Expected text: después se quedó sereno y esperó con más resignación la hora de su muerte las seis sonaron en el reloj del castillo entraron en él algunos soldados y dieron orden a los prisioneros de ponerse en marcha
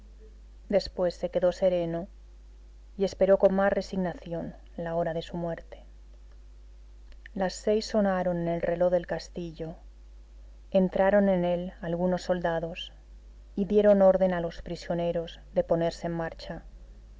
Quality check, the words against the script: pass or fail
pass